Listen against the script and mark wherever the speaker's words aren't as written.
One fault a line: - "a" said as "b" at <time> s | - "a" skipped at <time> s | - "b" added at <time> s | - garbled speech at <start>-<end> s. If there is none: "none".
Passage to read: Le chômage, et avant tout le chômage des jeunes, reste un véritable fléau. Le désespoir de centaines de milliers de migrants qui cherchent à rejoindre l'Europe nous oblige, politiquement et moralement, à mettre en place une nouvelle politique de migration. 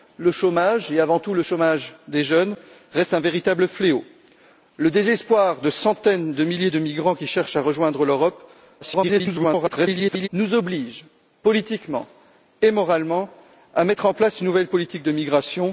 - garbled speech at 8.8-10.3 s